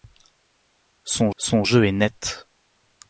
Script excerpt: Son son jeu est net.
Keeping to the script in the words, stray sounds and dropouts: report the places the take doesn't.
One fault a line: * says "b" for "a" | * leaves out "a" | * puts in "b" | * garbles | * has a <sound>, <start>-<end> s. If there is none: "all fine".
all fine